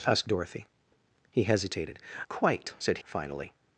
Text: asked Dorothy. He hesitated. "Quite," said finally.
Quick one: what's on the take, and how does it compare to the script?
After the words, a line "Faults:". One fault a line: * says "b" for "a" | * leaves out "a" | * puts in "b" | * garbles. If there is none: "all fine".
asked Dorothy. He hesitated. "Quite," said finally.
Faults:
all fine